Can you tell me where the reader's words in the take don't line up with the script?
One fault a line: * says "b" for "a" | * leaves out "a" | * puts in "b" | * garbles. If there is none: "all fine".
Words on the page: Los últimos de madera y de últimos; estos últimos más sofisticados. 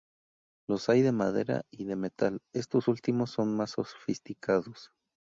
* says "hay" for "últimos"
* says "metal" for "últimos"
* puts in "son"